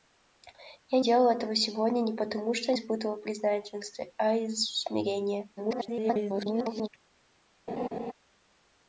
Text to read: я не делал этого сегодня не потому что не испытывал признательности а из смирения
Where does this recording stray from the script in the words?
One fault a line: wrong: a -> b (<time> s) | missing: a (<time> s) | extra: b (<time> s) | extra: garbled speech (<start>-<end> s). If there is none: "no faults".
missing: не (1.0 s)
missing: не (2.7 s)
extra: garbled speech (5.6-6.9 s)